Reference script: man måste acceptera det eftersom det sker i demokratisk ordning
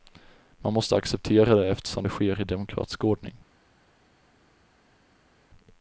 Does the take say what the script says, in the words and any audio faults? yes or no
yes